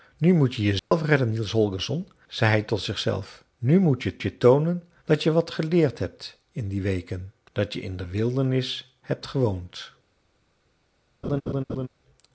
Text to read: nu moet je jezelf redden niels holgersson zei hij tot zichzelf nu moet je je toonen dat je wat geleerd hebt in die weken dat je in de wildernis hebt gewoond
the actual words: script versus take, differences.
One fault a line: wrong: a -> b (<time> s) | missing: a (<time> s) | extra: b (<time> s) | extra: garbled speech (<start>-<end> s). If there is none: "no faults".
no faults